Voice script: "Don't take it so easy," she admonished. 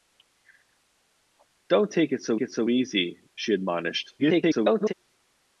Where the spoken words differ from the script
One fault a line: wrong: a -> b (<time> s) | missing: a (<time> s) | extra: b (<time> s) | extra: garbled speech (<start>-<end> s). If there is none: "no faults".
extra: it so (2.4 s)
extra: garbled speech (4.2-4.9 s)